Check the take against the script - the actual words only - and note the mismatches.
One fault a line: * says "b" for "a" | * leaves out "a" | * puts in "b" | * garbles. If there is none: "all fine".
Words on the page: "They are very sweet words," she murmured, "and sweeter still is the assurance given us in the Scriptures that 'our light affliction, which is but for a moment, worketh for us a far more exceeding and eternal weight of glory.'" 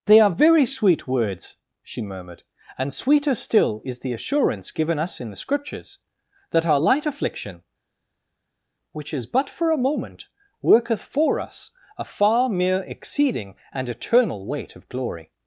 * says "mere" for "more"